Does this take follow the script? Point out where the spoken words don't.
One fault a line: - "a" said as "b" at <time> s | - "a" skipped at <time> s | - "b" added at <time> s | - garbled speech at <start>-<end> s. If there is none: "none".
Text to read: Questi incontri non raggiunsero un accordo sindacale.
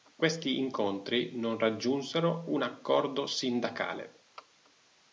none